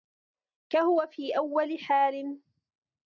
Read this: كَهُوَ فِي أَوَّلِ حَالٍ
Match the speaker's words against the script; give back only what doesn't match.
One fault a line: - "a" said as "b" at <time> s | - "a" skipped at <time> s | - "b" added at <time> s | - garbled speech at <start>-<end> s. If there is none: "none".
none